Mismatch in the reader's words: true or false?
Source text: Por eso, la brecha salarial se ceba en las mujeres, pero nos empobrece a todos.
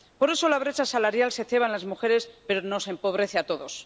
false